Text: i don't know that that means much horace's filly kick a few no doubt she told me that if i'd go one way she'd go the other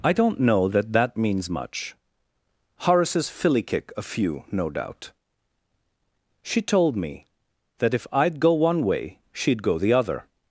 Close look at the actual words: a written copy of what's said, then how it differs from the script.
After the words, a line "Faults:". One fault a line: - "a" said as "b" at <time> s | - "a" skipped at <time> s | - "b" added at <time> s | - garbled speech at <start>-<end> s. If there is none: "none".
i don't know that that means much horace's filly kick a few no doubt she told me that if i'd go one way she'd go the other
Faults:
none